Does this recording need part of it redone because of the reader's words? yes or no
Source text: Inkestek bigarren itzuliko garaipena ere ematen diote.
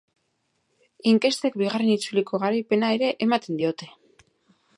no